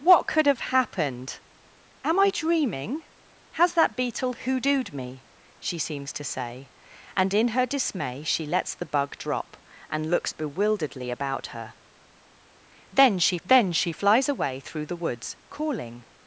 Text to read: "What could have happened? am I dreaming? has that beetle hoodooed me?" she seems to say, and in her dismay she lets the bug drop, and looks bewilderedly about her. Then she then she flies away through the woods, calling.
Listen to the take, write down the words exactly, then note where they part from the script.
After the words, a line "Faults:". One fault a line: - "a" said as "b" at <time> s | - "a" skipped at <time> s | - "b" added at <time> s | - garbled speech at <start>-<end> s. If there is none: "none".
"What could have happened? am I dreaming? has that beetle hoodooed me?" she seems to say, and in her dismay she lets the bug drop, and looks bewilderedly about her. Then she then she flies away through the woods, calling.
Faults:
none